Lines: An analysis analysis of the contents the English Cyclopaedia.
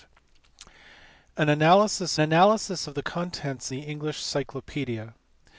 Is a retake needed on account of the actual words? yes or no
no